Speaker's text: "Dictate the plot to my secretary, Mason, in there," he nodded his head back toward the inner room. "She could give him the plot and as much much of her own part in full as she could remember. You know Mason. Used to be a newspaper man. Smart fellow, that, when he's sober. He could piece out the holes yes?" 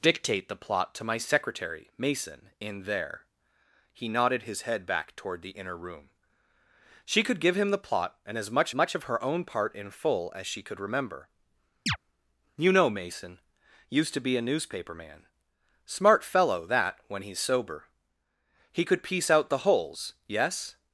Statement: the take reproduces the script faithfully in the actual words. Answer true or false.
true